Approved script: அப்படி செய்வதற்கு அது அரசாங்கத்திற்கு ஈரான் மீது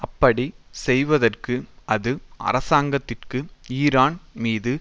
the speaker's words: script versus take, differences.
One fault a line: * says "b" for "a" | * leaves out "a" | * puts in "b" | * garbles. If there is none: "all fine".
all fine